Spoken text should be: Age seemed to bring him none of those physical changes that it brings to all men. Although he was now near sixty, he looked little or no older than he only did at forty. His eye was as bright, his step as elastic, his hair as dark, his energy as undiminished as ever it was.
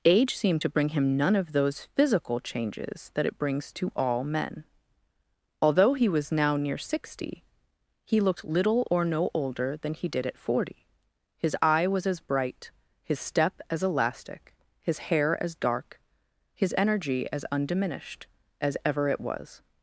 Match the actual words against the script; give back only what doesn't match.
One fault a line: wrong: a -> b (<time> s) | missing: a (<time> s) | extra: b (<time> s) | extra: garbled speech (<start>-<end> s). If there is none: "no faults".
missing: only (10.1 s)